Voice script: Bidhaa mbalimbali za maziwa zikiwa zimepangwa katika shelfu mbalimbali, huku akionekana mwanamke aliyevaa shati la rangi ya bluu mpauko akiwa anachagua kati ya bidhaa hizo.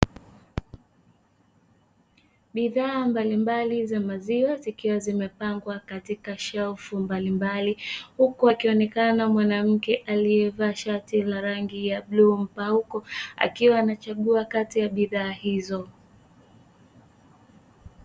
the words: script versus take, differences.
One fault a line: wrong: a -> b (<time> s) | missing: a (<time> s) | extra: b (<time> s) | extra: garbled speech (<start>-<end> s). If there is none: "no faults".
no faults